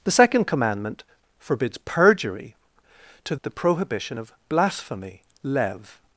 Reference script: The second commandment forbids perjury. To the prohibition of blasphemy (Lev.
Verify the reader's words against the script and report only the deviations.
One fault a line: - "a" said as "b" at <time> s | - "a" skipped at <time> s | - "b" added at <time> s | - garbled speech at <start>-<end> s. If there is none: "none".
none